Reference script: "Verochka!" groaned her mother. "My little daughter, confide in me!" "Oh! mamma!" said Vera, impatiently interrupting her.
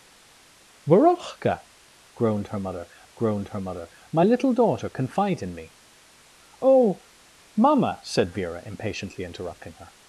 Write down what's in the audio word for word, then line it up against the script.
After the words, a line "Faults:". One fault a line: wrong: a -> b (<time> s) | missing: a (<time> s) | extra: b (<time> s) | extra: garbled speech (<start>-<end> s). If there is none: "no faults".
"Verochka!" groaned her mother groaned her mother. "My little daughter, confide in me!" "Oh! mamma!" said Vera, impatiently interrupting her.
Faults:
extra: groaned her mother (3.1 s)